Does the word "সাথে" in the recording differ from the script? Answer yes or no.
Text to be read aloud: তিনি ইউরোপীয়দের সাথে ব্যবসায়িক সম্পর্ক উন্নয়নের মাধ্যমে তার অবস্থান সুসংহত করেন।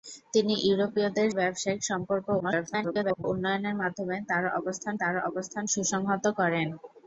yes